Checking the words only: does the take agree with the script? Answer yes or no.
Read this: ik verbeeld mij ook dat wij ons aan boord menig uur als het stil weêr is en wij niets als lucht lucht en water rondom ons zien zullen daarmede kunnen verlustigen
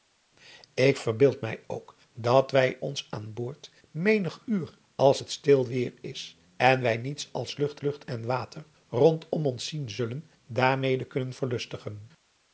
yes